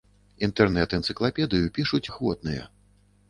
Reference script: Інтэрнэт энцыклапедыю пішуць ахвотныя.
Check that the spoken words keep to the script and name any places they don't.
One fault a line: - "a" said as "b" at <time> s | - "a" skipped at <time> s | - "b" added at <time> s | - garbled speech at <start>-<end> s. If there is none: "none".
none